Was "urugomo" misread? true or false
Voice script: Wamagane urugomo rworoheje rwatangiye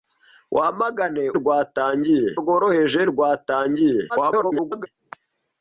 true